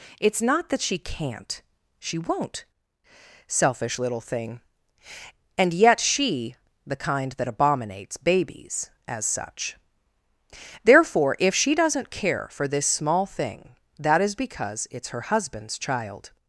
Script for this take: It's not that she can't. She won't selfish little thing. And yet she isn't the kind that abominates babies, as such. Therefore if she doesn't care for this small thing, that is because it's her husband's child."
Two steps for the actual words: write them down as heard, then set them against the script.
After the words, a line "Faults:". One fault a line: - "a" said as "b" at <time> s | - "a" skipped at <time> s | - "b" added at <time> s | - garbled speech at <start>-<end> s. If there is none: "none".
It's not that she can't. She won't selfish little thing. And yet she the kind that abominates babies, as such. Therefore if she doesn't care for this small thing, that is because it's her husband's child."
Faults:
- "isn't" skipped at 6.6 s